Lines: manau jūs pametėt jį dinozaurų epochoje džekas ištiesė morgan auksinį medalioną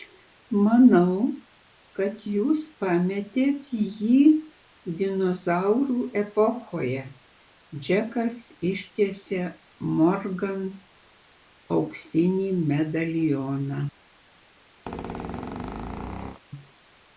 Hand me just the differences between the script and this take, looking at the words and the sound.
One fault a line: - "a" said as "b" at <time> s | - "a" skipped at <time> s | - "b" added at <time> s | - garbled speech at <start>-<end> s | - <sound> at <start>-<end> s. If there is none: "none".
- "kad" added at 2.0 s
- squeak at 14.9-16.4 s